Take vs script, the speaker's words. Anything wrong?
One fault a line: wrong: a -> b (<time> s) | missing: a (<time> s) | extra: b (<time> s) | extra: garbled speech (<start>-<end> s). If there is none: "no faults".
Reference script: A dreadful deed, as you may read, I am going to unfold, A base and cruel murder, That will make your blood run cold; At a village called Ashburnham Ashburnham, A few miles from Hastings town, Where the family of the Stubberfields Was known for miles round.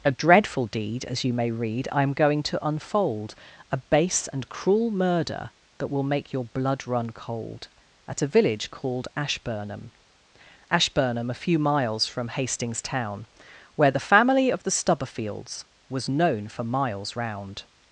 no faults